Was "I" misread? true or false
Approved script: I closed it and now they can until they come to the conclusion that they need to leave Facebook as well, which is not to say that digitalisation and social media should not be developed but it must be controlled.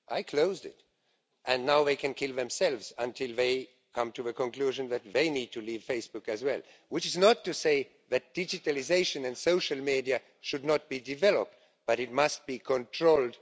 false